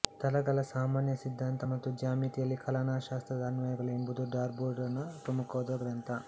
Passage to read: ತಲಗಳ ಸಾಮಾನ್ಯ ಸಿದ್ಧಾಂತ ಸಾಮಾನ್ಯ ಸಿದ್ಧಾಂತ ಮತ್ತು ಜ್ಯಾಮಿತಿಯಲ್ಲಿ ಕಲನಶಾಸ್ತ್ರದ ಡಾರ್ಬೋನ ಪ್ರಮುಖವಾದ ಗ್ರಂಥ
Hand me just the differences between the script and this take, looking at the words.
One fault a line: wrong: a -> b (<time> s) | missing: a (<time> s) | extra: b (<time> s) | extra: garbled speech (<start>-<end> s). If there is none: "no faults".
missing: ಸಾಮಾನ್ಯ ಸಿದ್ಧಾಂತ (1.7 s)
extra: ಅನ್ವಯಗಳು ಎಂಬುದು (3.5 s)